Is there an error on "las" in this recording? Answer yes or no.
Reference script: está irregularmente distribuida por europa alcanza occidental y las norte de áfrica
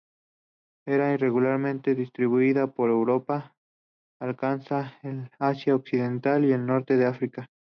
yes